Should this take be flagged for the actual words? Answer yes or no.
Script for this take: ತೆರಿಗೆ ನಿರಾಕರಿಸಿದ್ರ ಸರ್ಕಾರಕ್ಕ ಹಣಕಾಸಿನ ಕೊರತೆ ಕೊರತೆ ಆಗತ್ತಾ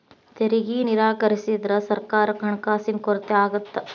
yes